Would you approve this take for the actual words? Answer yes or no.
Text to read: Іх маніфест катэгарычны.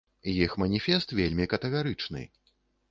no